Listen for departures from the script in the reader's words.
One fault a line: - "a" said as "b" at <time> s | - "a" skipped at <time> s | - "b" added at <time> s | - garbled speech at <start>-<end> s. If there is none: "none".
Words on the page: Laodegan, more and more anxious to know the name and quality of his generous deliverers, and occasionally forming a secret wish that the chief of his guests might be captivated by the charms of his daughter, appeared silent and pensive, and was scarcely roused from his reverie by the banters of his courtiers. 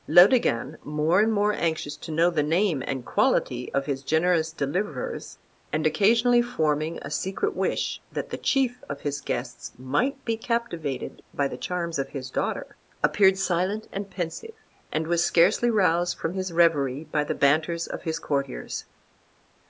none